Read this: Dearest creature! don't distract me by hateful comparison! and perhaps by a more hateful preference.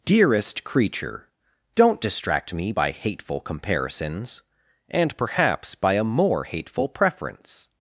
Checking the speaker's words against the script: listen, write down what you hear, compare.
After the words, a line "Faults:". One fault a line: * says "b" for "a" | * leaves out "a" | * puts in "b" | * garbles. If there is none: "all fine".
Dearest creature! don't distract me by hateful comparisons! and perhaps by a more hateful preference.
Faults:
* says "comparisons" for "comparison"